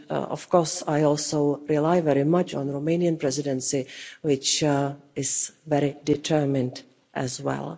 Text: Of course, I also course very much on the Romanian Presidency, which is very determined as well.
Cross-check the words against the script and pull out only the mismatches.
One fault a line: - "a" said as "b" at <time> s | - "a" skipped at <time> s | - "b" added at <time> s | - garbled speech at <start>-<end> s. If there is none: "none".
- "course" said as "rely" at 1.7 s